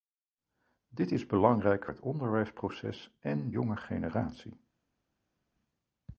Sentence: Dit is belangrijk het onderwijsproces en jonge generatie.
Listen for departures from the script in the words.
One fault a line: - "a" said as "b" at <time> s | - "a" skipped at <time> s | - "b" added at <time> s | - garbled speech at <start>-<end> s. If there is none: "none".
none